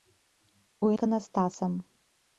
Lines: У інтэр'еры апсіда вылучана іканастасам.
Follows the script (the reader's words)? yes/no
no